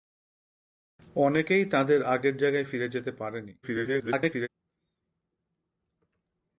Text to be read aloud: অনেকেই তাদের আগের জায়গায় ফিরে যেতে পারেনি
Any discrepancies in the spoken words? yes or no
yes